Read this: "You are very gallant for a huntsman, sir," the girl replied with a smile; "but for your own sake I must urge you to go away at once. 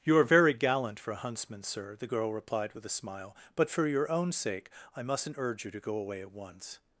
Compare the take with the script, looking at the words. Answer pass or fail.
fail